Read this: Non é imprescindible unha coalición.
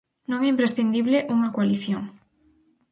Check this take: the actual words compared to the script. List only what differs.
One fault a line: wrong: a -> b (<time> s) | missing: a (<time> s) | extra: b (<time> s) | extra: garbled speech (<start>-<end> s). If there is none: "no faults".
no faults